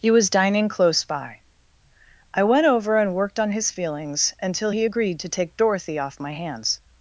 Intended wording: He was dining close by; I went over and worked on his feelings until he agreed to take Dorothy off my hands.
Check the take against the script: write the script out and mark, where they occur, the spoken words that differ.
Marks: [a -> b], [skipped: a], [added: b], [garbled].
He was dining close by; I went over and worked on his feelings until he agreed to take Dorothy off my hands.